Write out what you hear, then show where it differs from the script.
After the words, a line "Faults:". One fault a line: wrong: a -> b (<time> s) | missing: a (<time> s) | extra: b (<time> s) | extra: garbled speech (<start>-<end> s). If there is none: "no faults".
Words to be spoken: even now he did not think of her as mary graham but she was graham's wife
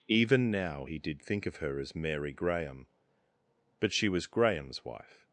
even now he did think of her as mary graham but she was graham's wife
Faults:
missing: not (1.2 s)